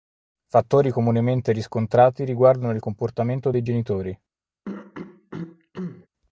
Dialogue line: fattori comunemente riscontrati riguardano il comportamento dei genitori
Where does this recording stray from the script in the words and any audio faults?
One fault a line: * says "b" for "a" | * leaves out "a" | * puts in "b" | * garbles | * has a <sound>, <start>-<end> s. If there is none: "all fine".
* has a throat clearing, 4.6-6.1 s